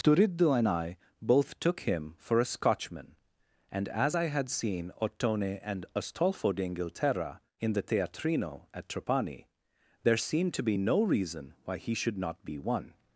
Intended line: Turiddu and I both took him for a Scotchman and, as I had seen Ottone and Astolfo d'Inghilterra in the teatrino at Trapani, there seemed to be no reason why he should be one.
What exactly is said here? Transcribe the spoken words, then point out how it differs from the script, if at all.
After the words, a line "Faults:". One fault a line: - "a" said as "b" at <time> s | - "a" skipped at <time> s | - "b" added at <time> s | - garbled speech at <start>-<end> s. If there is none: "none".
Turiddu and I both took him for a Scotchman and, as I had seen Ottone and Astolfo d'Inghilterra in the teatrino at Trapani, there seemed to be no reason why he should not be one.
Faults:
- "not" added at 12.2 s